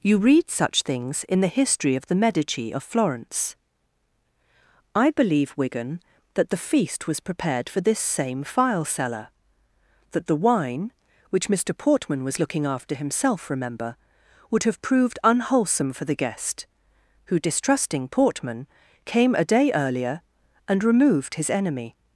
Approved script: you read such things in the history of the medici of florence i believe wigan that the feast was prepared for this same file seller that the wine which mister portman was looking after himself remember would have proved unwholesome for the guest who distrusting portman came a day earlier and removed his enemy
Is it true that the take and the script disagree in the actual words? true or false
false